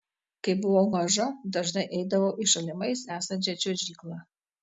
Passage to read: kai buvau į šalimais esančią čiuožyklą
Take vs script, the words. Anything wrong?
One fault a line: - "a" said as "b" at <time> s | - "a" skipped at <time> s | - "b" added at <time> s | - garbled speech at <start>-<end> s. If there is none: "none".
- "maža dažnai eidavau" added at 0.9 s